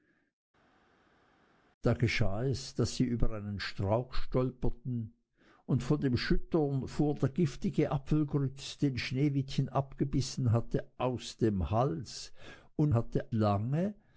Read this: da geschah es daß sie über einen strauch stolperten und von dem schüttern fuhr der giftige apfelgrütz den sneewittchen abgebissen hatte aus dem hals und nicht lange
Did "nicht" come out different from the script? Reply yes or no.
yes